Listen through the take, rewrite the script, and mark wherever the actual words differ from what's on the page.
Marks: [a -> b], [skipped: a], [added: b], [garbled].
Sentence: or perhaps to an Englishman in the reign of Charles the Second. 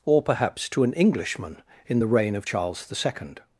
or perhaps to an Englishman in the reign of Charles the Second.